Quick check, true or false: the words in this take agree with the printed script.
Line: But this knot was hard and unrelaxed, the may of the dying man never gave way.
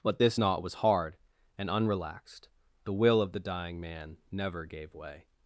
false